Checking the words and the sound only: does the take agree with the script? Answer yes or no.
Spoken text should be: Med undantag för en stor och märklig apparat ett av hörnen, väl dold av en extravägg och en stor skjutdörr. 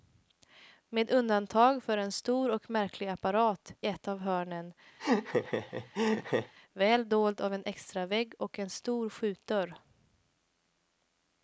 no